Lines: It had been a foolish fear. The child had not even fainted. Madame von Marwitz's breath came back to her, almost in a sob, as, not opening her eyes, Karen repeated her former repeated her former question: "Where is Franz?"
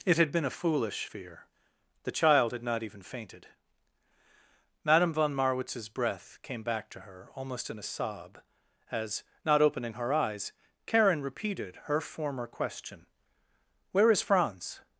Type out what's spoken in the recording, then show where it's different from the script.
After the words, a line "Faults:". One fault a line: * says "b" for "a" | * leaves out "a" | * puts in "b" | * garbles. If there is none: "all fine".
It had been a foolish fear. The child had not even fainted. Madame von Marwitz's breath came back to her, almost in a sob, as, not opening her eyes, Karen repeated her former question: "Where is Franz?"
Faults:
* leaves out "repeated her former"